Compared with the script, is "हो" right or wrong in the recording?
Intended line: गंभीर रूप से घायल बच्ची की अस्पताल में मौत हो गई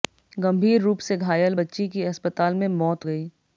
wrong